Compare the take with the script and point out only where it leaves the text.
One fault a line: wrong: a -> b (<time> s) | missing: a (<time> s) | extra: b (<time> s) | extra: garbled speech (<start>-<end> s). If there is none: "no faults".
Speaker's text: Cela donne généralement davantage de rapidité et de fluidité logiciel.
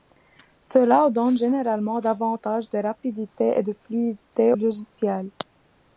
no faults